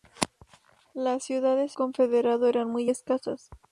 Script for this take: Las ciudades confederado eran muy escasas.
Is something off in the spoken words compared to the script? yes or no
no